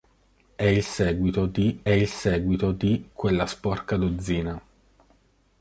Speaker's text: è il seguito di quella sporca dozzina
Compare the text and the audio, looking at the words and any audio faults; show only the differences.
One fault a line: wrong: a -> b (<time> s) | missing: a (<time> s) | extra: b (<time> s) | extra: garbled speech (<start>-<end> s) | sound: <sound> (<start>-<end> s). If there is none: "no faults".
extra: il seguito di (1.9 s)